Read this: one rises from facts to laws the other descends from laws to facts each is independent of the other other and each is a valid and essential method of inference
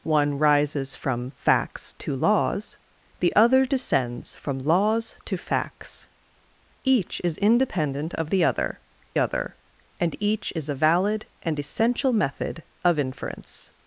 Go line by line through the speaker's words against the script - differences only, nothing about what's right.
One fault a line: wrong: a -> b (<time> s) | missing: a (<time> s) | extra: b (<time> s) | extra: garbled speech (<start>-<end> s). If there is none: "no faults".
no faults